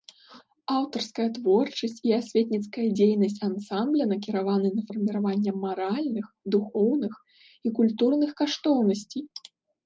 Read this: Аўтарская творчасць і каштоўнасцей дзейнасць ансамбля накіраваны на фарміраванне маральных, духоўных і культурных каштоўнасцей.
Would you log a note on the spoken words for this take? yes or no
yes